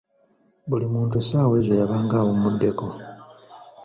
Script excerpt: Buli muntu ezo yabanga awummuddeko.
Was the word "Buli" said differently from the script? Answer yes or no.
no